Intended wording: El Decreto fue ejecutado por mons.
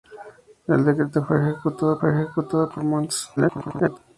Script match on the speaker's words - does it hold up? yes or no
no